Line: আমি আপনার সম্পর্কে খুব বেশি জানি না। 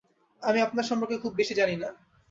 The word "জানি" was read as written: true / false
true